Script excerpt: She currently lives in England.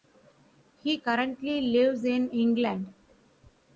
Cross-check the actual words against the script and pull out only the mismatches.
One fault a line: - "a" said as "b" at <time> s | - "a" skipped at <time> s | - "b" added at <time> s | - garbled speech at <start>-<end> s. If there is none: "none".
- "She" said as "He" at 0.8 s